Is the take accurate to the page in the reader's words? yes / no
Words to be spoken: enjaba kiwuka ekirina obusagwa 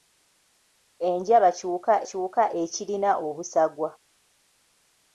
no